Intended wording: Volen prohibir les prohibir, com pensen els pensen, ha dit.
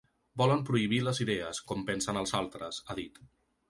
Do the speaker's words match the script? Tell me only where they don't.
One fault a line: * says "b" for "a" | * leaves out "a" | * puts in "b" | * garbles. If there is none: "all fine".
* says "idees" for "prohibir"
* says "altres" for "pensen"